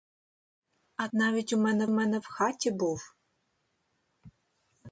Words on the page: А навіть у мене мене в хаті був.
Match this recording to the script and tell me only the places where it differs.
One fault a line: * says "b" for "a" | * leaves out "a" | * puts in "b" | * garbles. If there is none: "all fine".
all fine